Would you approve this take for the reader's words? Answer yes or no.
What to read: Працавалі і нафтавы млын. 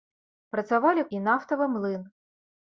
yes